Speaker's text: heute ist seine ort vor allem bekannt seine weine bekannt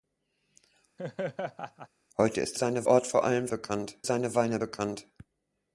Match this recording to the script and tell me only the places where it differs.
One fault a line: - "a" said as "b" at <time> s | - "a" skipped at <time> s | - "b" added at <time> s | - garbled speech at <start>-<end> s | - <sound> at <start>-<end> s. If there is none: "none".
- laugh at 1.0-1.9 s